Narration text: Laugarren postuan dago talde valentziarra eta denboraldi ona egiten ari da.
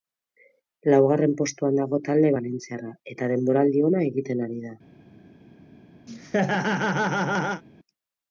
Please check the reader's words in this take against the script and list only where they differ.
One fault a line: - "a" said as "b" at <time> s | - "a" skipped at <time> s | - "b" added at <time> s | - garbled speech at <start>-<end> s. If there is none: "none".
none